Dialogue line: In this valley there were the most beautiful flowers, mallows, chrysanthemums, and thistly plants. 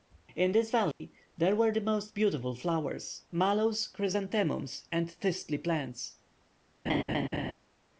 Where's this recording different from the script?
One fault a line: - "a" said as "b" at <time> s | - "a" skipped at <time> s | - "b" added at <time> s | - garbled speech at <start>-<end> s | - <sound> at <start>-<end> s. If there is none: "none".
- dropout at 0.9-1.0 s
- laugh at 6.9-7.5 s